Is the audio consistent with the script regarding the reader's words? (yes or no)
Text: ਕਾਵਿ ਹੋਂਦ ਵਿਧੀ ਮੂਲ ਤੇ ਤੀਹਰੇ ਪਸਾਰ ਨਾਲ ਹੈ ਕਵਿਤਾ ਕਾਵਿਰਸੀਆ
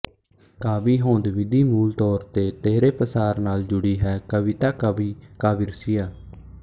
no